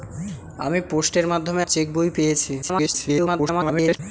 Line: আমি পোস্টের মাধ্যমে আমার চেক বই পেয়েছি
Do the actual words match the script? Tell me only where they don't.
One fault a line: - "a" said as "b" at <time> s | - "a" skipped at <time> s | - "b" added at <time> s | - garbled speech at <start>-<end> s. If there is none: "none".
- "আমার" skipped at 1.6 s
- garbled speech at 2.6-4.0 s